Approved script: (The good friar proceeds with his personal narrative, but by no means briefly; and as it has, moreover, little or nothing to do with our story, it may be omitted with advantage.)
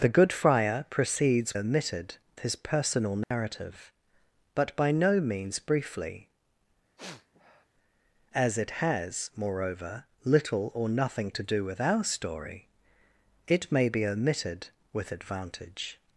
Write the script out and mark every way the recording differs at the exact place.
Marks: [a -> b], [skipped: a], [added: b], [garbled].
(The good friar proceeds [with -> omitted] his personal narrative, but by no means briefly; [skipped: and] as it has, moreover, little or nothing to do with our story, it may be omitted with advantage.)